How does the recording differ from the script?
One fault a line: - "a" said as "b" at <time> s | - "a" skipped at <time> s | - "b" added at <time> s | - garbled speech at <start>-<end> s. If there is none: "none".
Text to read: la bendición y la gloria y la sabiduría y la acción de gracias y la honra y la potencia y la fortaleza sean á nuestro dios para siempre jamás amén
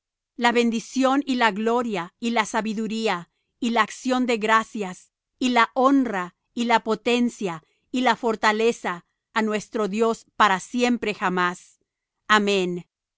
- "sean" skipped at 9.0 s